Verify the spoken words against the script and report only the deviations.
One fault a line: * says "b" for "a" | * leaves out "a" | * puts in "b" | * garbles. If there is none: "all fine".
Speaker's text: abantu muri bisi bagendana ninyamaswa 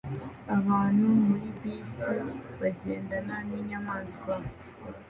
all fine